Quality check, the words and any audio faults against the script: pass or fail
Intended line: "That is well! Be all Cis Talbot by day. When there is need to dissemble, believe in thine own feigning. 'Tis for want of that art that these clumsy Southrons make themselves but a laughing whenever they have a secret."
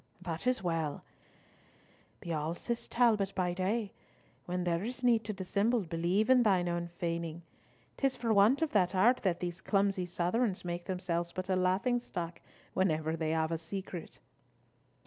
fail